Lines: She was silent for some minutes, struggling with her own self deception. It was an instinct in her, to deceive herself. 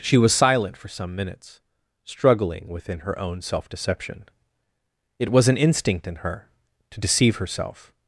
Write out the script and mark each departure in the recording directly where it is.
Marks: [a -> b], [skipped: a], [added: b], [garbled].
She was silent for some minutes, struggling [with -> within] her own self deception. It was an instinct in her, to deceive herself.